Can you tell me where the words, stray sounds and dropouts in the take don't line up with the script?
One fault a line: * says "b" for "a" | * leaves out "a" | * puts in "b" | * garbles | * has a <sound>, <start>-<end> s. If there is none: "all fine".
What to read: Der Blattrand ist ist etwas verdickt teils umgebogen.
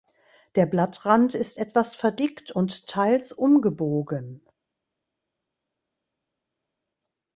* leaves out "ist"
* puts in "und"